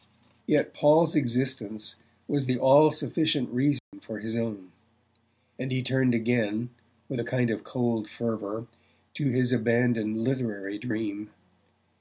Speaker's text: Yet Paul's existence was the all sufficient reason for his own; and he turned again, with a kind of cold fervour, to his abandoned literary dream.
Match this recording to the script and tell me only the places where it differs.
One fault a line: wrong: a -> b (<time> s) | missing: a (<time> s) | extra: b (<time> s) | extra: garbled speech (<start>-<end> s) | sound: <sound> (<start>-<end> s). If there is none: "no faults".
sound: dropout (3.8-3.9 s)